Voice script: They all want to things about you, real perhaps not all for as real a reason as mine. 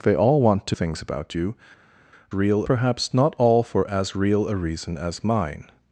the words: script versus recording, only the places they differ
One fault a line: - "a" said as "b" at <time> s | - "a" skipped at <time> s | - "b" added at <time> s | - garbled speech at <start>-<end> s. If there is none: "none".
none